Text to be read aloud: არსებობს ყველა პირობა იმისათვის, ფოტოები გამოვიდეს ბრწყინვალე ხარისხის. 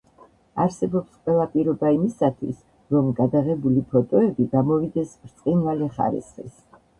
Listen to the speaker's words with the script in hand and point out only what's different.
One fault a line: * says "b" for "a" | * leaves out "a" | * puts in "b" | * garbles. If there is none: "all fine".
* puts in "რომ გადაღებული"